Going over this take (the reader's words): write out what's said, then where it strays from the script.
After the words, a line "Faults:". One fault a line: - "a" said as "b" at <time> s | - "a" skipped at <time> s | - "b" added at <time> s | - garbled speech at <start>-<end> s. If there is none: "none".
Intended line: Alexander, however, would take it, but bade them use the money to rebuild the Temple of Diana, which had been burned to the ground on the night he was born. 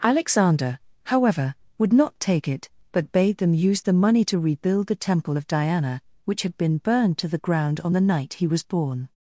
Alexander, however, would not take it, but bade them use the money to rebuild the Temple of Diana, which had been burned to the ground on the night he was born.
Faults:
- "not" added at 1.9 s